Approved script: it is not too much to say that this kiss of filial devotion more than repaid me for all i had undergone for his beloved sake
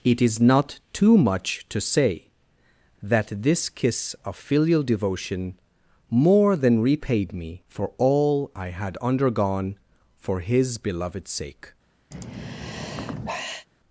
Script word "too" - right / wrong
right